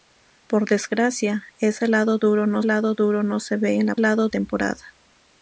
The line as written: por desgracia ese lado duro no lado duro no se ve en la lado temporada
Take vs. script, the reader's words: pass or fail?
pass